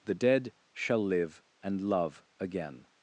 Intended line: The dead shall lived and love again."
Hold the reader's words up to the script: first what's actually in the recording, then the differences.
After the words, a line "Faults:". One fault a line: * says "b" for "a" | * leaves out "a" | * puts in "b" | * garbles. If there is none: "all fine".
The dead shall live and love again."
Faults:
* says "live" for "lived"